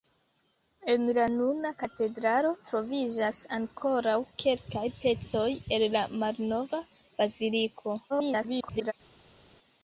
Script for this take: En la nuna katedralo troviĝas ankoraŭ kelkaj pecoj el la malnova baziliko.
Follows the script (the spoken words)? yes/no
no